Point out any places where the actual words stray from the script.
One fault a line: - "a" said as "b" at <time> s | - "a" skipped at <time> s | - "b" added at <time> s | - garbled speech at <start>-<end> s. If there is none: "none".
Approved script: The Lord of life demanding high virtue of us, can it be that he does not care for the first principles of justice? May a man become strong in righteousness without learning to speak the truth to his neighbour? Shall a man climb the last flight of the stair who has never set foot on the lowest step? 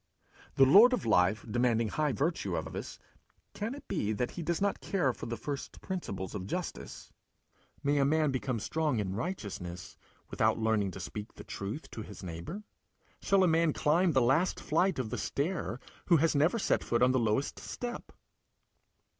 - "of" added at 2.6 s
- "in" added at 9.0 s